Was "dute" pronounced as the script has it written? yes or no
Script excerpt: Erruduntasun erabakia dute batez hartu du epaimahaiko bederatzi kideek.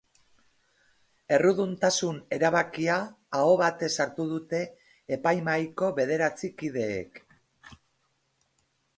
no